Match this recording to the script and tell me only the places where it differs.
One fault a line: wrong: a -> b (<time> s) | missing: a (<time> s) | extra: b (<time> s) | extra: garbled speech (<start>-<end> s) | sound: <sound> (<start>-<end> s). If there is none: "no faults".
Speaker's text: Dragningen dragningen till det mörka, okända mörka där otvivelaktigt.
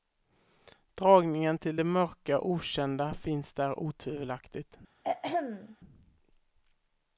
missing: dragningen (1.6 s)
wrong: mörka -> finns (3.1 s)
sound: throat clearing (5.0-5.8 s)